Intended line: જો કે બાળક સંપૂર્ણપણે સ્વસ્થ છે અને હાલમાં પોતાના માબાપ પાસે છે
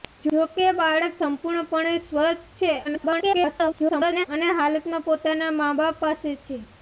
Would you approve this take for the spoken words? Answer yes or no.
no